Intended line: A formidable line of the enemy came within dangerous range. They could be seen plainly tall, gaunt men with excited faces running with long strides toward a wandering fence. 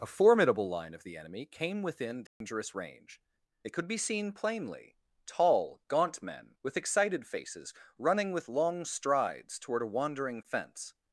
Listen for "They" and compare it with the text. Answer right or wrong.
wrong